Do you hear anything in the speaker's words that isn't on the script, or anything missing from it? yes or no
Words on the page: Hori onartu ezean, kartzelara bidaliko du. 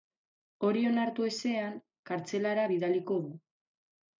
no